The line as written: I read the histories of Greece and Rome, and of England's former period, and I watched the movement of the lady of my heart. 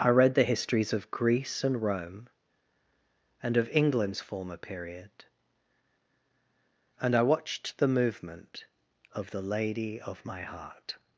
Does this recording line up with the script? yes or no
yes